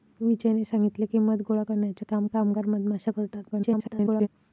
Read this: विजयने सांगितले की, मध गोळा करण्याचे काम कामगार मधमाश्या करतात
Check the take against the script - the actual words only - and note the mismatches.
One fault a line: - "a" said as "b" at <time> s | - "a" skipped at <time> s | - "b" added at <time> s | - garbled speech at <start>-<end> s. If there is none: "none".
- garbled speech at 3.5-4.3 s